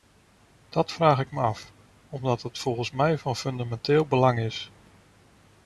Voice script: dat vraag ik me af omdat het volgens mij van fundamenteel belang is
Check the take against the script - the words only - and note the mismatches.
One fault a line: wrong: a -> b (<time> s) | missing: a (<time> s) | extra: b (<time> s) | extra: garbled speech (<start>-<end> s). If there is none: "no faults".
no faults